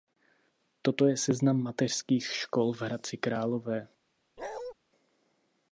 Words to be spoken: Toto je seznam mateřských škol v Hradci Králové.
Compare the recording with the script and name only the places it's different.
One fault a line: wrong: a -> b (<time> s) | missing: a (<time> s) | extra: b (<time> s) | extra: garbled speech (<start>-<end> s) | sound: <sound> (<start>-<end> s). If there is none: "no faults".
sound: bark (4.4-4.7 s)